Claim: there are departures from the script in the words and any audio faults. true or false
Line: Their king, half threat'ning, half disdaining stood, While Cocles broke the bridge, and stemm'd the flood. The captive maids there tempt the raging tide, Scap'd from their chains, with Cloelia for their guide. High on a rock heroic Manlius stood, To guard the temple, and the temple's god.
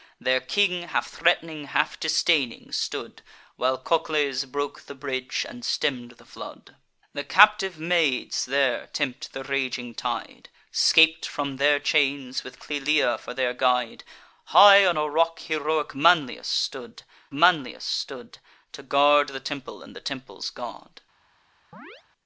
true